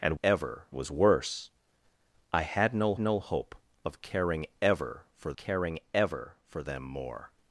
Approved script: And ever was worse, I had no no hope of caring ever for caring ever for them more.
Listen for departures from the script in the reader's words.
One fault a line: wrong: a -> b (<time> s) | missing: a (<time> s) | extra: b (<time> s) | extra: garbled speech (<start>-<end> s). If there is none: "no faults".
no faults